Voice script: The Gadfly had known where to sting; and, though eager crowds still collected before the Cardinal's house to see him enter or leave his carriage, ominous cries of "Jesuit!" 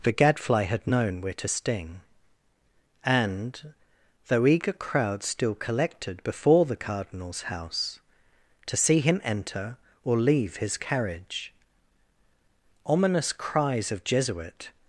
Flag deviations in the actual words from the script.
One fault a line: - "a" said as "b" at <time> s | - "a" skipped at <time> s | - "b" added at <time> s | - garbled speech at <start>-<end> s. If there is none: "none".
none